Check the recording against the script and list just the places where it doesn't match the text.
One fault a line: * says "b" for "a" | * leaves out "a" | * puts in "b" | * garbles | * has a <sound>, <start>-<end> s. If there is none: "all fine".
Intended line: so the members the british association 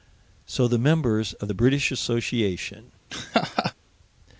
* puts in "of"
* has a laugh, 3.1-3.7 s